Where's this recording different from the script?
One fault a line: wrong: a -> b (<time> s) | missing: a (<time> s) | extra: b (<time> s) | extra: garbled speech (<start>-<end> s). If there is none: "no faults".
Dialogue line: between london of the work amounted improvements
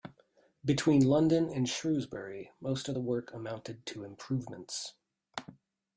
extra: and shrewsbury most (1.5 s)
extra: to (3.9 s)